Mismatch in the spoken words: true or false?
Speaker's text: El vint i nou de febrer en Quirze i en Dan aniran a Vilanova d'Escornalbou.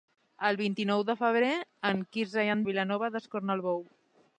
true